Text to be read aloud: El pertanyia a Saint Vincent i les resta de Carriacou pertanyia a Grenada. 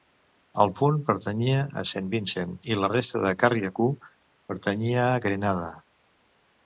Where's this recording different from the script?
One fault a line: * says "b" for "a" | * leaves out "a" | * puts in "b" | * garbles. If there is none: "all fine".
* puts in "punt"
* says "la" for "les"